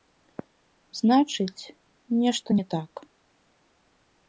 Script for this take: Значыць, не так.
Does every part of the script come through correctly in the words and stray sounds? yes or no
no